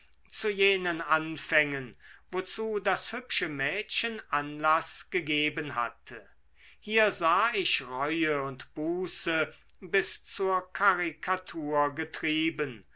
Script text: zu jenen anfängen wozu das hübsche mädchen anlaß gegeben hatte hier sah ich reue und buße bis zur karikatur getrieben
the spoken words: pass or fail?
pass